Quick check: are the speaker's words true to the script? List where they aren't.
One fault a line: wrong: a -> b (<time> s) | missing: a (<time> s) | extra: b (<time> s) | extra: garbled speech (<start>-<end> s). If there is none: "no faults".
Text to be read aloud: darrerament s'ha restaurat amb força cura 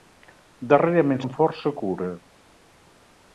missing: s'ha restaurat (1.2 s)